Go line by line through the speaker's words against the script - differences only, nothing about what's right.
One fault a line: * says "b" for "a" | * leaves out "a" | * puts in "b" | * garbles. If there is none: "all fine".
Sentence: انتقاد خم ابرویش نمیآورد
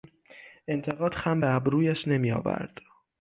* puts in "به"